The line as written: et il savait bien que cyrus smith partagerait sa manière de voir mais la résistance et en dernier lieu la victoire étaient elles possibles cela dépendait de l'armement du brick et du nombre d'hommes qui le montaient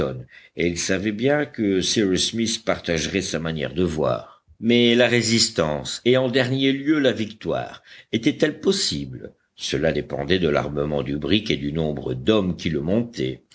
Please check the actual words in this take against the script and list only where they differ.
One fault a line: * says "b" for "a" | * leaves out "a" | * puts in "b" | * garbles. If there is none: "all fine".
all fine